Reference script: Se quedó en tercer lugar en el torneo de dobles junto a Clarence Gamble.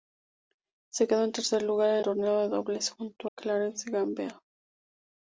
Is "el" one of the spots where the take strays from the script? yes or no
yes